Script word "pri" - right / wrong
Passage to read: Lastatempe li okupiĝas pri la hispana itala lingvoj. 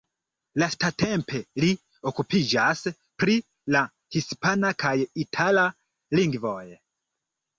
right